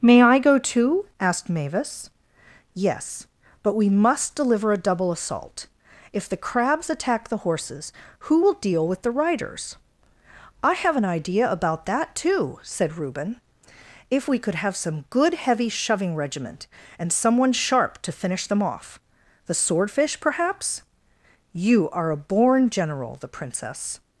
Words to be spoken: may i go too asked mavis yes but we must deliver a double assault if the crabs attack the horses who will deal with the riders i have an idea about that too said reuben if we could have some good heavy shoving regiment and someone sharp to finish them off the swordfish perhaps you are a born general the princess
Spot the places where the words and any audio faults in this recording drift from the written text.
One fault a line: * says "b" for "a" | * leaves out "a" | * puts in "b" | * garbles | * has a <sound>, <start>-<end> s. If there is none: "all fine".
all fine